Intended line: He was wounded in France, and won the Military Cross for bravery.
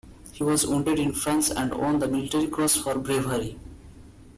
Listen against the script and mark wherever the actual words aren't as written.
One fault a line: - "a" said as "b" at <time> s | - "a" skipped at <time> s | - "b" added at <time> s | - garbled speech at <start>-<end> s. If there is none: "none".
none